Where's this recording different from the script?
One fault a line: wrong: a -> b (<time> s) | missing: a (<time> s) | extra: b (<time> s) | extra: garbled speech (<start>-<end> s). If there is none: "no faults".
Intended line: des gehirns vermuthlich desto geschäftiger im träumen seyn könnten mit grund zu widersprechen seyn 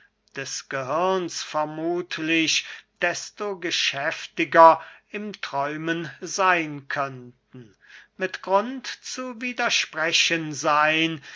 no faults